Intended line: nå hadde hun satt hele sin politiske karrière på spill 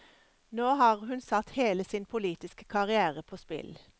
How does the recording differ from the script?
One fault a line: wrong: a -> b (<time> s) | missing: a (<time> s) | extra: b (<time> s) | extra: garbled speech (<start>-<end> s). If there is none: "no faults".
wrong: hadde -> har (0.8 s)